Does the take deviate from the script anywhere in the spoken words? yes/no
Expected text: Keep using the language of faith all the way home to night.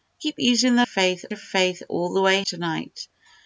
yes